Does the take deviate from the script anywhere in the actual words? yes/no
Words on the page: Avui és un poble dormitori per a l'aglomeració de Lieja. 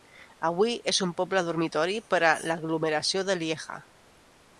no